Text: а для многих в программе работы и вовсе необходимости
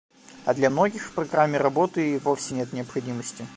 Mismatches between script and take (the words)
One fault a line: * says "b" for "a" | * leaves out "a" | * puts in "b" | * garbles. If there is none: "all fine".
* puts in "нет"